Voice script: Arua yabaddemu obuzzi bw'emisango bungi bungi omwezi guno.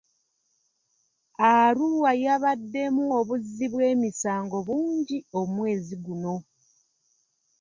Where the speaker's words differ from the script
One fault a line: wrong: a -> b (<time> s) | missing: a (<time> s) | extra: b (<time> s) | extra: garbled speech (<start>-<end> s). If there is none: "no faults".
missing: bungi (5.2 s)